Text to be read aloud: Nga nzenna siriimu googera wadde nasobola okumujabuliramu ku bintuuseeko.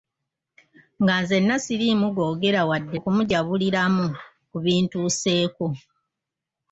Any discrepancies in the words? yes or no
yes